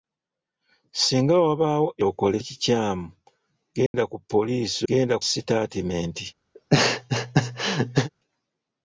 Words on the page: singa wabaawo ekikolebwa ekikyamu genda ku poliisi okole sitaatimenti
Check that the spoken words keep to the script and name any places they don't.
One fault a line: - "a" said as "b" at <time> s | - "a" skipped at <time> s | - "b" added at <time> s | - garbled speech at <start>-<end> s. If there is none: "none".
- "ekikolebwa" said as "okole" at 2.1 s
- "okole" said as "genda" at 4.9 s